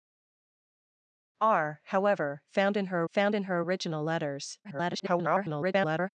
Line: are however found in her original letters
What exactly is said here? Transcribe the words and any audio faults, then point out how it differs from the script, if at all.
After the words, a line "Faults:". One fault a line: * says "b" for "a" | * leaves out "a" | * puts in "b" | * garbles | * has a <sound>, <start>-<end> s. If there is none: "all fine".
are however found in her found in her original letters [garbled]
Faults:
* puts in "found in her"
* garbles